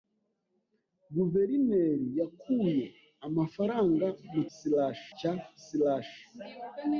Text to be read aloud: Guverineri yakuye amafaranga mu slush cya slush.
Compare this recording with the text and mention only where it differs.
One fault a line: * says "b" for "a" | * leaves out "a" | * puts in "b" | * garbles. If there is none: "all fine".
all fine